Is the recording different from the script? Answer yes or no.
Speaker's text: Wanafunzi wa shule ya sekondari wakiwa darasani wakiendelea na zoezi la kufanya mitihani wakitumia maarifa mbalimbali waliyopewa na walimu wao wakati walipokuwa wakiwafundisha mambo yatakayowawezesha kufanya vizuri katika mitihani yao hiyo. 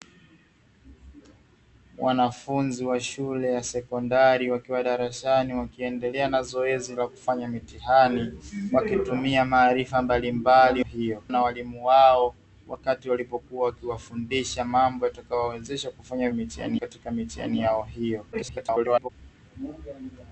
yes